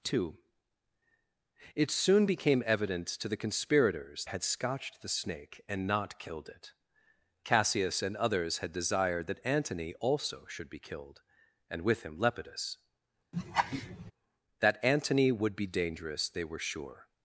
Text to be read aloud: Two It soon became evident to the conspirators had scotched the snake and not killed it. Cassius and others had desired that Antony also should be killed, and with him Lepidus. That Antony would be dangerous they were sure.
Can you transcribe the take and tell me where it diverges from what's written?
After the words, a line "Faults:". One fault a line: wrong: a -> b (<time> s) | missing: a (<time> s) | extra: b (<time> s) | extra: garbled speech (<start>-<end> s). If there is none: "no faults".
Two It soon became evident to the conspirators had scotched the snake and not killed it. Cassius and others had desired that Antony also should be killed, and with him Lepidus. That Antony would be dangerous they were sure.
Faults:
no faults